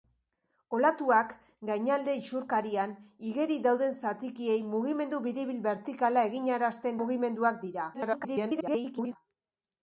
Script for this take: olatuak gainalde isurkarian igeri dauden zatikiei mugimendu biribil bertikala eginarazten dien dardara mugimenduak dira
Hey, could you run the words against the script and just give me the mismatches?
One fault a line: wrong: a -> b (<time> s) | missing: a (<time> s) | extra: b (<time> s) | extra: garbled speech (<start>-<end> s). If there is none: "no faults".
missing: dien dardara (7.0 s)
extra: garbled speech (7.9-9.2 s)